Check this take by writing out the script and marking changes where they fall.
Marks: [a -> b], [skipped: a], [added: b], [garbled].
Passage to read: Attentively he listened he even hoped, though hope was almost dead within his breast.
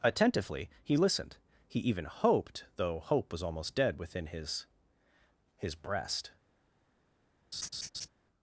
Attentively he listened he even hoped, though hope was almost dead within his [added: his] breast.